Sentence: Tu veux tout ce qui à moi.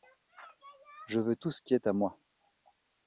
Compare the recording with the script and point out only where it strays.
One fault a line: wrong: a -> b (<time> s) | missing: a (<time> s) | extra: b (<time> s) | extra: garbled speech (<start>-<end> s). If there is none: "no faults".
wrong: Tu -> Je (1.1 s)
extra: est (1.7 s)